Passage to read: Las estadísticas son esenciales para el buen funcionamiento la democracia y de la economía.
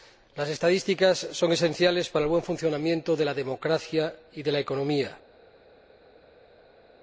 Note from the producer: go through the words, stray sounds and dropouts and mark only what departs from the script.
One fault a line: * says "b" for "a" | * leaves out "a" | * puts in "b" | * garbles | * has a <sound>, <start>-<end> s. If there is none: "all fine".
* puts in "de"